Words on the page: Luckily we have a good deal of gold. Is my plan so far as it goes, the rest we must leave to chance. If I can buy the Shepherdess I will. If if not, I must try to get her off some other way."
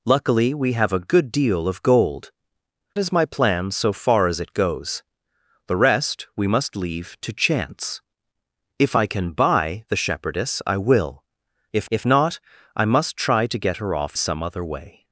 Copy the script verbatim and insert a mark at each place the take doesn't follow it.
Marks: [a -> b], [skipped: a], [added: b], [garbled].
Luckily we have a good deal of gold. Is my plan so far as it goes, the rest we must leave to chance. If I can buy the Shepherdess I will. If if not, I must try to get her off some other way."